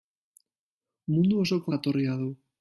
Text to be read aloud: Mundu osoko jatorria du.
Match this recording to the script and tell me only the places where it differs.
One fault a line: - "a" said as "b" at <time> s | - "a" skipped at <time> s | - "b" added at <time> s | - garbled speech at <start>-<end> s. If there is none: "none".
none